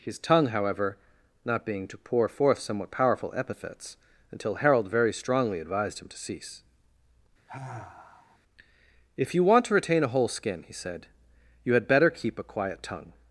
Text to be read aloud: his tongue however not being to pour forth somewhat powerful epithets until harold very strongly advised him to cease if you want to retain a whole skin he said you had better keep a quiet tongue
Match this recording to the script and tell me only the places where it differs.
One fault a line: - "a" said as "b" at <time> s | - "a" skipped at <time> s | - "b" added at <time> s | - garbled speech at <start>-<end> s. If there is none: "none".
none